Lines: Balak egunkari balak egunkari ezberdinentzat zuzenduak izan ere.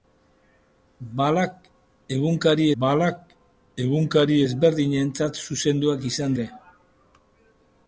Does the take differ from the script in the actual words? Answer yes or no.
no